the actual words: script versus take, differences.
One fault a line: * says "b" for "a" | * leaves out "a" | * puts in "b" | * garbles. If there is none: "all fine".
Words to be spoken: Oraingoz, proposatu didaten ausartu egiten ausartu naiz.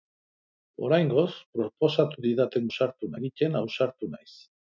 all fine